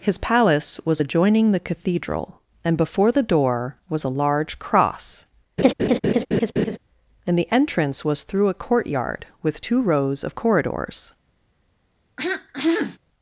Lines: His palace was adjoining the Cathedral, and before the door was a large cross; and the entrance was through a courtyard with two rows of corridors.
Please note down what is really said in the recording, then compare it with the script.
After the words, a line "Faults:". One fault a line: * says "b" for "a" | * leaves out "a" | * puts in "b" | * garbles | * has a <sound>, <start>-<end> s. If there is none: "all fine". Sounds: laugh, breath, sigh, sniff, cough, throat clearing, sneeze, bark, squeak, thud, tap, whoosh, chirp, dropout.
His palace was adjoining the Cathedral, and before the door was a large cross; and the entrance was through a courtyard with two rows of corridors.
Faults:
* has a laugh, 5.6-6.8 s
* has a throat clearing, 12.2-13.0 s